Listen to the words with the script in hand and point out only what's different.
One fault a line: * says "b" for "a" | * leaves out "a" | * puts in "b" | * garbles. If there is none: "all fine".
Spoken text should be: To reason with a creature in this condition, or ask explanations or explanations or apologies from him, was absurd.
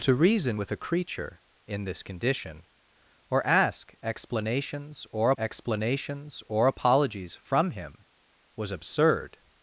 all fine